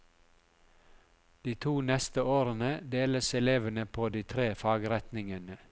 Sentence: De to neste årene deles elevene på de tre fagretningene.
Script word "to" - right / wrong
right